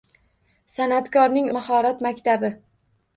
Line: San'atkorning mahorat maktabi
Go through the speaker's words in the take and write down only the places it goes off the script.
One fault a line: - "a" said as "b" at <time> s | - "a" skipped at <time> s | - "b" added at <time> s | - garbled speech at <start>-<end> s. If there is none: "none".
none